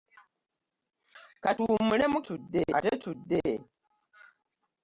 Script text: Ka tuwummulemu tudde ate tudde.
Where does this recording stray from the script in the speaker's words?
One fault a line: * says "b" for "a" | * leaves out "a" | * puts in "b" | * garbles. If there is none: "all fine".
all fine